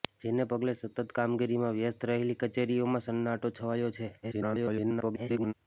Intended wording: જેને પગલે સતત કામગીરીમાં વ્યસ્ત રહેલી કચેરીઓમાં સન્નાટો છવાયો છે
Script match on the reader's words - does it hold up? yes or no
no